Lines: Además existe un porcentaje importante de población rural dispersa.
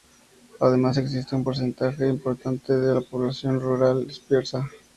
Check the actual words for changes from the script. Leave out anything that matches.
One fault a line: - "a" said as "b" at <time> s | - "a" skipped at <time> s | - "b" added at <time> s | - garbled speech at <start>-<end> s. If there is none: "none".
none